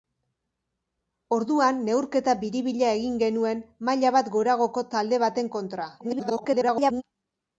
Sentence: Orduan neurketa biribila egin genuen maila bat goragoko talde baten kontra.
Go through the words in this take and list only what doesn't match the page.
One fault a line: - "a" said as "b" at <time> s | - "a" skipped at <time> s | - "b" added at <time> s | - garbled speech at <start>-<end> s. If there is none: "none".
- garbled speech at 6.0-7.0 s